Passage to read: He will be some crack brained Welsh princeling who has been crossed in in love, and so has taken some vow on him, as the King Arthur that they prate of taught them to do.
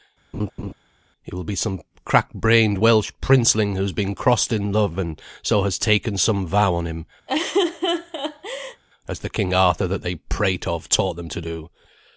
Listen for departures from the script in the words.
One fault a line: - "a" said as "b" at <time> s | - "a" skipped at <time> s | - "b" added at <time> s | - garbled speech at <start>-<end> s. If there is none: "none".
- "in" skipped at 4.7 s